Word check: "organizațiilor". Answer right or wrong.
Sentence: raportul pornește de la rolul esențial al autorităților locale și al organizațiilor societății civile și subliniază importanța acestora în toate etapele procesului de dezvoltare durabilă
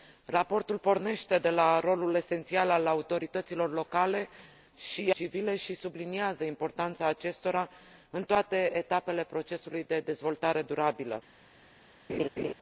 wrong